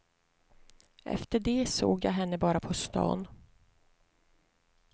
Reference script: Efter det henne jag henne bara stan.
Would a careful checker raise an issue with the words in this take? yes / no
yes